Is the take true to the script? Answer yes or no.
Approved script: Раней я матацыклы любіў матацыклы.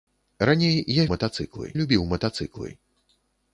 yes